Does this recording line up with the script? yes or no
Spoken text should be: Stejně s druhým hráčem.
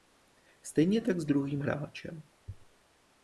no